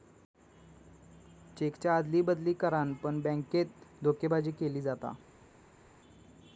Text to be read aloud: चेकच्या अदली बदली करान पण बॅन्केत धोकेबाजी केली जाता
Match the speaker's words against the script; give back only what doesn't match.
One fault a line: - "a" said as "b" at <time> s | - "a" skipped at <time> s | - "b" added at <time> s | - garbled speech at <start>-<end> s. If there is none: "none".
none